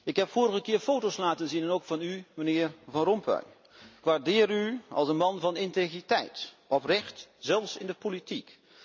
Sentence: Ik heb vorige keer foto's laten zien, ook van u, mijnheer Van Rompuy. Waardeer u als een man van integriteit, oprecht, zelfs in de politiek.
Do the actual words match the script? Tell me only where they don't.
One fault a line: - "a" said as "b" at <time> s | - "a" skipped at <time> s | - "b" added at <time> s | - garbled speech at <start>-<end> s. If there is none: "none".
none